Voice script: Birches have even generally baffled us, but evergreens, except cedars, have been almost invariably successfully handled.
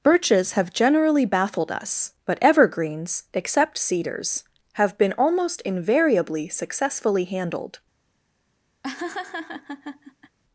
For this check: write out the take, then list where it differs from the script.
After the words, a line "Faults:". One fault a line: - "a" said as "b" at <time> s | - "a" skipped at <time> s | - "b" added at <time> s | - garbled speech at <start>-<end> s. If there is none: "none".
Birches have generally baffled us, but evergreens, except cedars, have been almost invariably successfully handled.
Faults:
- "even" skipped at 0.7 s